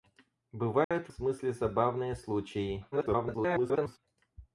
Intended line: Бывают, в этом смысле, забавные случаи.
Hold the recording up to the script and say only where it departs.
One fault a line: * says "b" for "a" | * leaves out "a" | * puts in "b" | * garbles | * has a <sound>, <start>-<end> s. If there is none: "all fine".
* has a dropout, 0.8-0.9 s
* leaves out "этом"
* garbles